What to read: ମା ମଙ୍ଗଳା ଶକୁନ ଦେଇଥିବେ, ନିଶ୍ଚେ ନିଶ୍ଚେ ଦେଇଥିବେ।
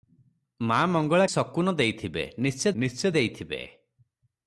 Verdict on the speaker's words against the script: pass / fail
pass